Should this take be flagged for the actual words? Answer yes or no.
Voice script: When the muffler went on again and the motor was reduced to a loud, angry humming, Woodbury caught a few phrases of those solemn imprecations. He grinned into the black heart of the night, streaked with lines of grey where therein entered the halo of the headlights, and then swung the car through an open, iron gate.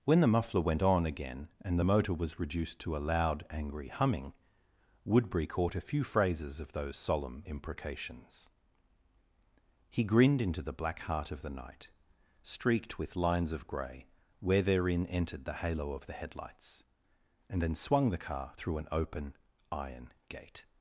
no